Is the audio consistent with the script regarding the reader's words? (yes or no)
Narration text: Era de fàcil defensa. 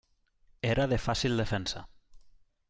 yes